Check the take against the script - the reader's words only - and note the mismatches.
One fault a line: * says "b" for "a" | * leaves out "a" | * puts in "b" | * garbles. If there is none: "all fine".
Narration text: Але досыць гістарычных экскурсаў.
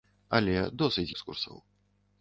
* leaves out "гістарычных"